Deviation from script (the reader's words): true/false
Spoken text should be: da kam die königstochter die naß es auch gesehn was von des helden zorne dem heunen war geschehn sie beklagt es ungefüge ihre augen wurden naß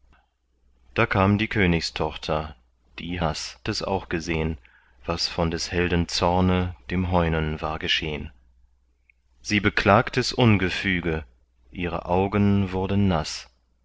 false